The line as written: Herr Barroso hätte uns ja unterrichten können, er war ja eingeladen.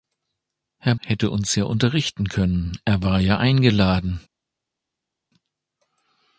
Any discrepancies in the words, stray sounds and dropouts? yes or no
yes